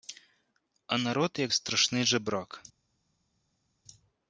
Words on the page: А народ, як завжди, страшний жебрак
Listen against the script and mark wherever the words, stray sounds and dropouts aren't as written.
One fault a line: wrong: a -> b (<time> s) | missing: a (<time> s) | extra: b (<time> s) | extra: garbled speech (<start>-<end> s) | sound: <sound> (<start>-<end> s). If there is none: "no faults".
missing: завжди (1.5 s)